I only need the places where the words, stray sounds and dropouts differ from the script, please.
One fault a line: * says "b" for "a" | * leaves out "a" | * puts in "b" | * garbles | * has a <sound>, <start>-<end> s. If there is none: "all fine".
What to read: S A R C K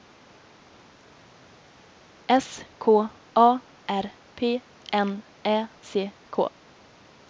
* puts in "K"
* puts in "P N Ä"